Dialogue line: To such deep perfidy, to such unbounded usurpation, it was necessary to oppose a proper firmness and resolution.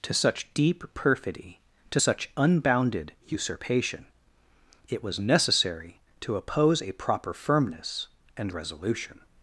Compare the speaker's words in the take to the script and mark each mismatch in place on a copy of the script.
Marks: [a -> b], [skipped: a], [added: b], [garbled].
To such deep perfidy, to such unbounded usurpation, it was necessary to oppose a proper firmness and resolution.